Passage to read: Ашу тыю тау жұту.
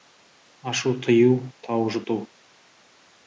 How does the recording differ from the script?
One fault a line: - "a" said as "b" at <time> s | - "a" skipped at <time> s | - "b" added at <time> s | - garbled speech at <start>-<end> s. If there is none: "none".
none